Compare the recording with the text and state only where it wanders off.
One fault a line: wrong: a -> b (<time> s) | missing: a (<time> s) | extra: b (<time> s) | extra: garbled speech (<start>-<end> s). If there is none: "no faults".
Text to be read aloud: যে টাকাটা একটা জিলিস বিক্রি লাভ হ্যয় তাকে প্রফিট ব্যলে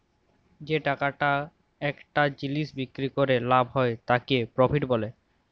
extra: ক্যরে (3.1 s)